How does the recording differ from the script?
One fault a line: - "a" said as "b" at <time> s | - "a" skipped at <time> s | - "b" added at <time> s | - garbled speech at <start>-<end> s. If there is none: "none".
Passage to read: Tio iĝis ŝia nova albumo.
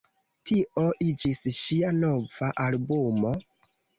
none